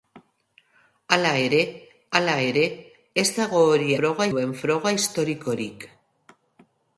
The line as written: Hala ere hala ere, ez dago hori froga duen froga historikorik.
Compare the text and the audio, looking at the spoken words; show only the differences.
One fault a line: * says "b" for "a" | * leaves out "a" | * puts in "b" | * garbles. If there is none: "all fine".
all fine